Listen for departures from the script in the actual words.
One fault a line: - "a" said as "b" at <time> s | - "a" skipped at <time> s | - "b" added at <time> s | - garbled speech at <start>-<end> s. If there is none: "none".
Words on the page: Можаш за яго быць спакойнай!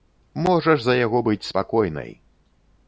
none